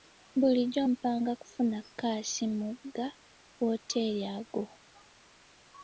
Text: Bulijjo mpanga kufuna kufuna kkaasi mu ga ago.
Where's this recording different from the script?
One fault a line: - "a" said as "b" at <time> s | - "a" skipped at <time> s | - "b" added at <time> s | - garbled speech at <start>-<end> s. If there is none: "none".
- "kufuna" skipped at 1.8 s
- "wooteeri" added at 3.6 s